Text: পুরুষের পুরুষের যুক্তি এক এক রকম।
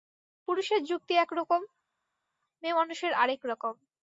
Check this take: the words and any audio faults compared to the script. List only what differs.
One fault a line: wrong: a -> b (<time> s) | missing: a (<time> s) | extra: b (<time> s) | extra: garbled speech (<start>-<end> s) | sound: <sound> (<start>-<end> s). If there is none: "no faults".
missing: পুরুষের (0.8 s)
extra: রকম মেয়েমানুষের আর (1.4 s)